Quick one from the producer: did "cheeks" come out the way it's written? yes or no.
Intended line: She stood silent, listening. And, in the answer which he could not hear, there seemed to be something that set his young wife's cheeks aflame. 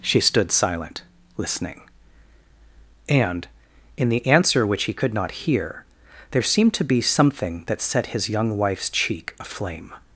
no